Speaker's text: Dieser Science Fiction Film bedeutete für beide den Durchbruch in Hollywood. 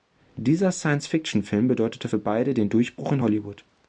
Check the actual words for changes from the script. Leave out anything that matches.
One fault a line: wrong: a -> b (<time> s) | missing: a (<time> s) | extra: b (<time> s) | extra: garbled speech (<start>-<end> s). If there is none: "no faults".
no faults